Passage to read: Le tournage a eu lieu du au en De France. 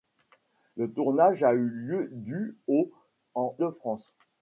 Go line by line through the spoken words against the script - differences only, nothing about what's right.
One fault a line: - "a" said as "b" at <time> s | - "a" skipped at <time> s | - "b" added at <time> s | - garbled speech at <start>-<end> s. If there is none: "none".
none